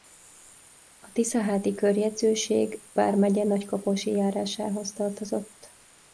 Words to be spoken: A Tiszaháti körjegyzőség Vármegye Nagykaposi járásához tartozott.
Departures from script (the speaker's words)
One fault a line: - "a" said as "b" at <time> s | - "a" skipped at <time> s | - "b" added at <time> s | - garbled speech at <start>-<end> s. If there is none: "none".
none